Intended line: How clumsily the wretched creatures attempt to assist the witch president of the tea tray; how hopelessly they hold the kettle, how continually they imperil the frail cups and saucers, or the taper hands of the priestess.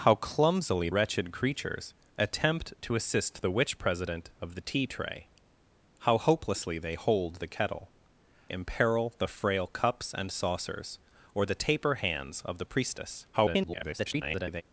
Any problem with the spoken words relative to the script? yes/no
yes